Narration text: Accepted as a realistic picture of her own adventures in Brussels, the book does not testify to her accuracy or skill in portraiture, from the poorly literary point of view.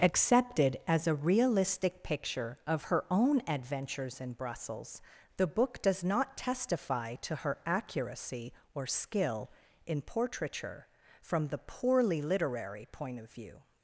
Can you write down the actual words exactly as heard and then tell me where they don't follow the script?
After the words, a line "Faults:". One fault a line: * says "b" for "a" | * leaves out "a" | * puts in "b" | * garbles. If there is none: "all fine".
Accepted as a realistic picture of her own adventures in Brussels, the book does not testify to her accuracy or skill in portraiture, from the poorly literary point of view.
Faults:
all fine